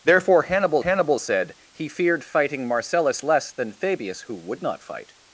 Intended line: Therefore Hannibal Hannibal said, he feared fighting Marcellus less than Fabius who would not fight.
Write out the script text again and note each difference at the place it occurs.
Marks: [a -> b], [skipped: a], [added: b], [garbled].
Therefore Hannibal Hannibal said, he feared fighting Marcellus less than Fabius who would not fight.